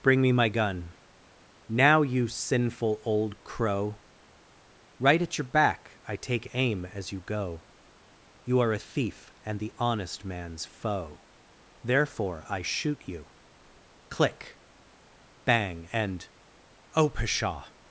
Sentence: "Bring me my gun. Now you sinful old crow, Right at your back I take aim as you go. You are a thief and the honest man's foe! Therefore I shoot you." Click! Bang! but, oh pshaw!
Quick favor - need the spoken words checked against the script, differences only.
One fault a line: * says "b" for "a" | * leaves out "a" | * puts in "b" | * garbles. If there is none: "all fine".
* says "and" for "but"